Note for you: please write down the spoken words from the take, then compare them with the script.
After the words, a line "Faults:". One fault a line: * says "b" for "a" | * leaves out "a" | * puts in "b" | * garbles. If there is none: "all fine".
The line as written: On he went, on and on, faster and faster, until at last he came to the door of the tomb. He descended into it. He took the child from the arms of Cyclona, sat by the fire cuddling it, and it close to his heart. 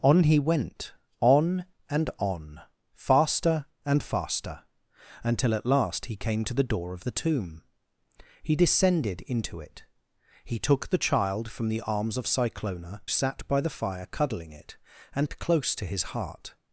On he went, on and on, faster and faster, until at last he came to the door of the tomb. He descended into it. He took the child from the arms of Cyclona, sat by the fire cuddling it, and it close to his heart.
Faults:
all fine